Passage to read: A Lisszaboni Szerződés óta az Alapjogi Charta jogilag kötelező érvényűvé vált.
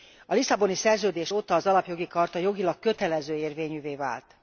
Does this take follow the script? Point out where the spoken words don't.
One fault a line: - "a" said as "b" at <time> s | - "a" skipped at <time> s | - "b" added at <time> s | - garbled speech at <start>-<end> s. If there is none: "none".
none